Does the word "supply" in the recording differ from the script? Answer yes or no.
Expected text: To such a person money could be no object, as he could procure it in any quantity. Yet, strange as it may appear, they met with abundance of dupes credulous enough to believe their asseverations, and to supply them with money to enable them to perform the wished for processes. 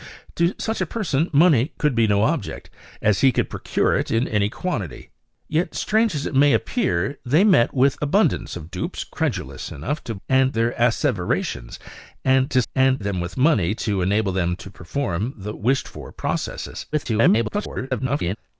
yes